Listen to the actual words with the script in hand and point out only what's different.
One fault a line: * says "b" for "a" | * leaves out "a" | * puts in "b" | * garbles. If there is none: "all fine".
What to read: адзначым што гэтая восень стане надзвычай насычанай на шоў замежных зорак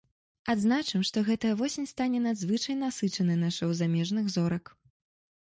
all fine